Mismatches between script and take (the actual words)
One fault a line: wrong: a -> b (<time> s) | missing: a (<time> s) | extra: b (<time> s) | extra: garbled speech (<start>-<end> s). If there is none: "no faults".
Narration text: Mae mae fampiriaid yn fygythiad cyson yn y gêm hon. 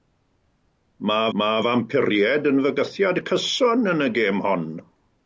no faults